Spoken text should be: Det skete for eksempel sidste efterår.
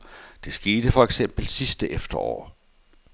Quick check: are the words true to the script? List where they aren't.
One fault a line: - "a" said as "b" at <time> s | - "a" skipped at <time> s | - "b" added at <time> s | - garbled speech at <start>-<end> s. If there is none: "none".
none